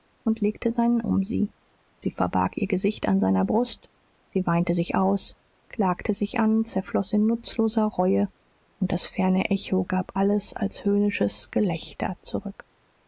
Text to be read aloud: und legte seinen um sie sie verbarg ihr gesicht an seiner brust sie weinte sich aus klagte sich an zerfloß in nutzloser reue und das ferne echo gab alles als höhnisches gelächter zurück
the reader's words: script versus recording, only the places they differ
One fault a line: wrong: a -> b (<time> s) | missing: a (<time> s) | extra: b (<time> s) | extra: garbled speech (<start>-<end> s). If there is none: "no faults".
no faults